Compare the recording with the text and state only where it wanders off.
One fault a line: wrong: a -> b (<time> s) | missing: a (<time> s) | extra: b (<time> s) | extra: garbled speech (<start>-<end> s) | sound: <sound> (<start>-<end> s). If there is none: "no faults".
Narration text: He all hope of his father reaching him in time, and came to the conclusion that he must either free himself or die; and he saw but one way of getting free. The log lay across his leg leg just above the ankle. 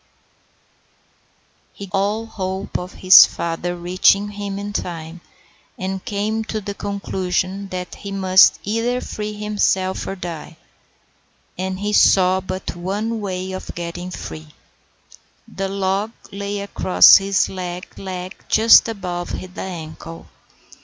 no faults